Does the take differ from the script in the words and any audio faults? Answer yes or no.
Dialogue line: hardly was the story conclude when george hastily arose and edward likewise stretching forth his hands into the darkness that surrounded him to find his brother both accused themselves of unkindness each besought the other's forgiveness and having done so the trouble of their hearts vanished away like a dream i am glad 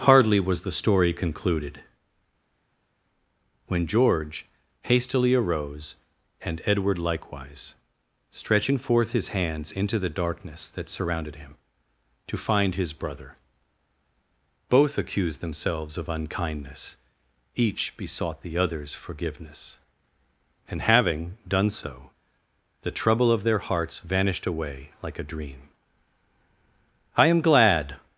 yes